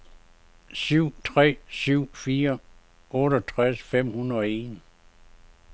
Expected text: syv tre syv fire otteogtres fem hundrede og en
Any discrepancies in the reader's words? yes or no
no